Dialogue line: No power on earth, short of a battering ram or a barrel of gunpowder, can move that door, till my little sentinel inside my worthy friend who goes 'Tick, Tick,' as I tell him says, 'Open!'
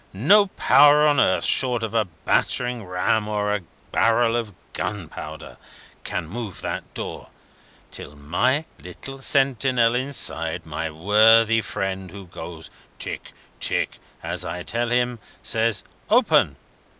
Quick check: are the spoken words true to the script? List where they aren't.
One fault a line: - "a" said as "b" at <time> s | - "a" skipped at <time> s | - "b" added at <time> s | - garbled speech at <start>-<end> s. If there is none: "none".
none